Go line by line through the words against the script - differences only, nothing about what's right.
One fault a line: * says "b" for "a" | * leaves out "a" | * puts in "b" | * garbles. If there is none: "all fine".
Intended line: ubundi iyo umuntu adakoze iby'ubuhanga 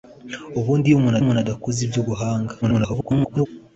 * puts in "umuntu"
* garbles